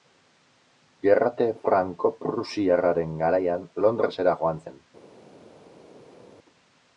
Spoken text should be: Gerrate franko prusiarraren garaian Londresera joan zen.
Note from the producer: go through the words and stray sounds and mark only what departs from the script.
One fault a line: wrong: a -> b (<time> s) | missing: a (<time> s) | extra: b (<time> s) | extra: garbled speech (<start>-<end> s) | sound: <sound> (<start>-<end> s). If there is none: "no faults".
no faults